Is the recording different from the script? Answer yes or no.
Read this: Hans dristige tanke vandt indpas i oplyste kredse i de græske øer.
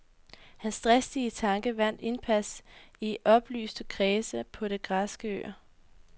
yes